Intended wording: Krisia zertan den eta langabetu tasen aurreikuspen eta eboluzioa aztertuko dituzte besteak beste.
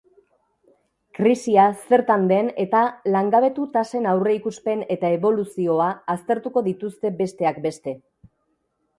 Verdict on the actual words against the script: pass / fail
pass